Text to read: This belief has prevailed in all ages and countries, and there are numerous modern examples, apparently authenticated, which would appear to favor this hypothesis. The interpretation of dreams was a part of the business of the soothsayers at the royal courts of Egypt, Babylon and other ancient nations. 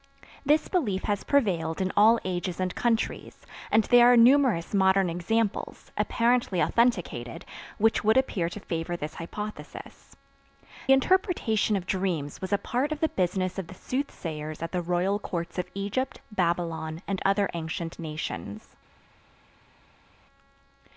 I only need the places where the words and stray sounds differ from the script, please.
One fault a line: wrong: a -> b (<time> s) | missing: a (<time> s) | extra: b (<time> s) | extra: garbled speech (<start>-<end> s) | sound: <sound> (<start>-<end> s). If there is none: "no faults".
missing: The (10.2 s)